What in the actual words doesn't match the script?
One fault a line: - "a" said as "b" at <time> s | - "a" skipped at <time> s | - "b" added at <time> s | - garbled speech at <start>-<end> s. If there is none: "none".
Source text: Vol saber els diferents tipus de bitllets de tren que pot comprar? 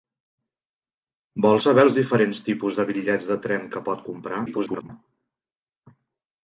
- garbled speech at 4.5-4.9 s